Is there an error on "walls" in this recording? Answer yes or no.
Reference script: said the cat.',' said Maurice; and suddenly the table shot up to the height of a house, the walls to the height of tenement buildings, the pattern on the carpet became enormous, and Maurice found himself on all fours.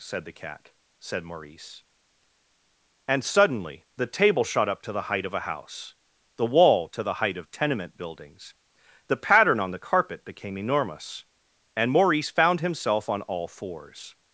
yes